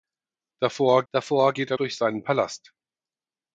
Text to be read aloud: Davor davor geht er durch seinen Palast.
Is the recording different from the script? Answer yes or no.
no